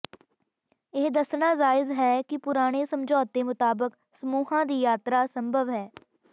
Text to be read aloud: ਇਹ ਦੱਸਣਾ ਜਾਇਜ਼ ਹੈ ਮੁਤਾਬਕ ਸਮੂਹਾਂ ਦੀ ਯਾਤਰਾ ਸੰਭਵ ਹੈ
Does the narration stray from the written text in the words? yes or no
yes